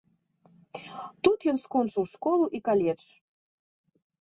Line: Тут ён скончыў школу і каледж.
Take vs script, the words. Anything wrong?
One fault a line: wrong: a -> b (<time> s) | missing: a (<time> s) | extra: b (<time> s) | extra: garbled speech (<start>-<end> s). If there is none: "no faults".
no faults